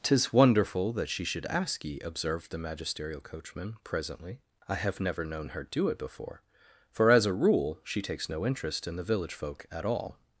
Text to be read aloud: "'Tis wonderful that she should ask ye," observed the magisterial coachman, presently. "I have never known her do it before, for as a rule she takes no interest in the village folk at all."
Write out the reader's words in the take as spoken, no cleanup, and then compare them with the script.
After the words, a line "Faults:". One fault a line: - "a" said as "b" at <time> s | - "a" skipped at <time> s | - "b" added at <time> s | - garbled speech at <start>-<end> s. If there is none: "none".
"'Tis wonderful that she should ask ye," observed the magisterial coachman, presently. "I have never known her do it before, for as a rule she takes no interest in the village folk at all."
Faults:
none